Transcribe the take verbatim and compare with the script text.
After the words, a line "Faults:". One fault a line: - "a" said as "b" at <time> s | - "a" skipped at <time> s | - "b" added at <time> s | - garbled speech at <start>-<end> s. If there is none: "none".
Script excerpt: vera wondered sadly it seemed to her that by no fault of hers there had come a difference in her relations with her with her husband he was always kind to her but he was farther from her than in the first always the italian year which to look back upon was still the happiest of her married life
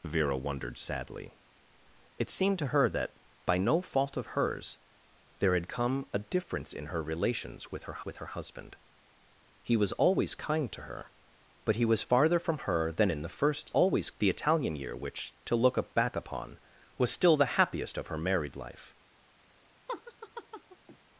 vera wondered sadly it seemed to her that by no fault of hers there had come a difference in her relations with her with her husband he was always kind to her but he was farther from her than in the first always the italian year which to look back upon was still the happiest of her married life
Faults:
none